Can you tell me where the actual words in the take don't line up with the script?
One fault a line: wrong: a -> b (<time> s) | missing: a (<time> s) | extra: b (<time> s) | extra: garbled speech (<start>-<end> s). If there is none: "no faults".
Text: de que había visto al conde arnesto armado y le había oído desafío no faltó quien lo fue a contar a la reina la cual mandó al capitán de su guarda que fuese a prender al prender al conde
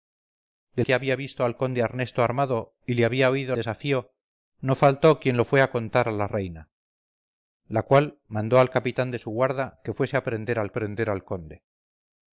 no faults